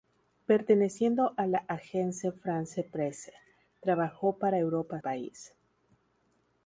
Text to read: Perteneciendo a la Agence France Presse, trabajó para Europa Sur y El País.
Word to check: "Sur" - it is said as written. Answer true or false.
false